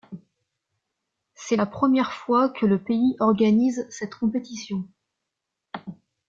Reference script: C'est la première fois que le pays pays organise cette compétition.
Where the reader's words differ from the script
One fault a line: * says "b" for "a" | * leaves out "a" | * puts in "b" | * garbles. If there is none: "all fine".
* leaves out "pays"